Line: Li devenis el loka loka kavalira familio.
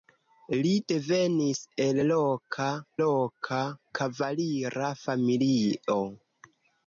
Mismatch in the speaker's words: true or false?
false